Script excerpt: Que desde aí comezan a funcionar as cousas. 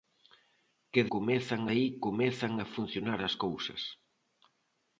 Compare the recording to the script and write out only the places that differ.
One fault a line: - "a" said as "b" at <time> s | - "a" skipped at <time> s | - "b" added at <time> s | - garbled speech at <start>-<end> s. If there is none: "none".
- "desde" said as "comezan" at 1.1 s